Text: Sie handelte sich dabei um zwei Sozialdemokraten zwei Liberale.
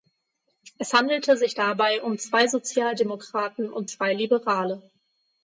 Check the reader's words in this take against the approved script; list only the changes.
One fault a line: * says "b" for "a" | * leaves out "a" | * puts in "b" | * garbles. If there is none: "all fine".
* says "Es" for "Sie"
* puts in "und"